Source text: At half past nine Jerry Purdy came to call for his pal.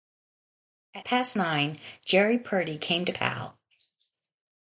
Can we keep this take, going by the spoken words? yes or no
no